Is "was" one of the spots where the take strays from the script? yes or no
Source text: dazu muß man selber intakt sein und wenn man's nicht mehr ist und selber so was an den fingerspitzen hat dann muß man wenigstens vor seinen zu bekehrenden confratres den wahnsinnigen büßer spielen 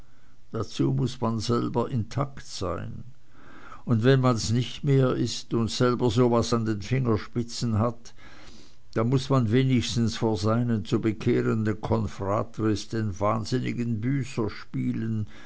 no